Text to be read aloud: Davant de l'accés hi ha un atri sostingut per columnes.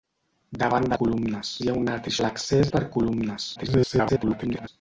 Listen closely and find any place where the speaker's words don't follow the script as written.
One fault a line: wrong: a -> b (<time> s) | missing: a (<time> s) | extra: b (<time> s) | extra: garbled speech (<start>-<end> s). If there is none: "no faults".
wrong: l'accés -> columnes (1.0 s)
wrong: sostingut -> l'accés (2.2 s)
extra: garbled speech (3.6-4.7 s)